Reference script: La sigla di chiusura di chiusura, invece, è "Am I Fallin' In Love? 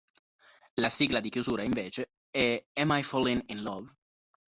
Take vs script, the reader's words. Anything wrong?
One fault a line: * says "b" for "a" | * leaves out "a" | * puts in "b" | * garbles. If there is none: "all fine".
* leaves out "di chiusura"